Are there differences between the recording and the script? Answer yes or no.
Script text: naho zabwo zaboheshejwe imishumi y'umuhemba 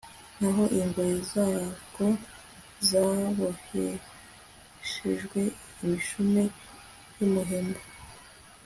yes